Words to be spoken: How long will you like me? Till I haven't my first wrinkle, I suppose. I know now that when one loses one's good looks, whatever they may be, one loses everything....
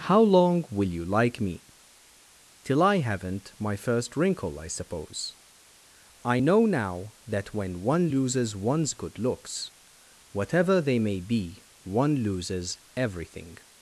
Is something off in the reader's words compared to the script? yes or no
no